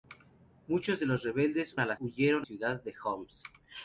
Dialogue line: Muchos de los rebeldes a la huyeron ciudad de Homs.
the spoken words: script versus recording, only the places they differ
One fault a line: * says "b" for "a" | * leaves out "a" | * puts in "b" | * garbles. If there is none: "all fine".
all fine